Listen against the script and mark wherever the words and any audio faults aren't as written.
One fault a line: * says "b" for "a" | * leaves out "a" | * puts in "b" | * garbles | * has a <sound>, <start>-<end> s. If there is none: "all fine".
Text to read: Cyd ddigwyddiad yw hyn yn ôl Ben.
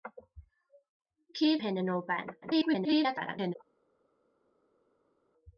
* leaves out "ddigwyddiad"
* garbles